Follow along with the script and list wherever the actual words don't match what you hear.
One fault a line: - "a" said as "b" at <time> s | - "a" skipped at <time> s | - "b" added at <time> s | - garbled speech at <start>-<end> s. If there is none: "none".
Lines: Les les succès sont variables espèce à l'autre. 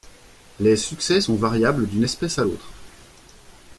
- "les" skipped at 0.8 s
- "d'une" added at 1.9 s